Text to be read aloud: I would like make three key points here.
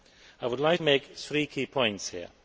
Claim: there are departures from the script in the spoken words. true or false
false